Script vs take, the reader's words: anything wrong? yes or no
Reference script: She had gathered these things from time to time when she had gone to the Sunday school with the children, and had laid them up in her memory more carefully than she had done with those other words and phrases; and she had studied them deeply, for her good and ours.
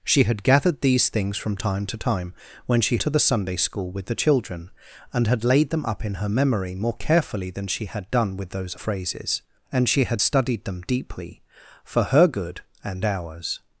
yes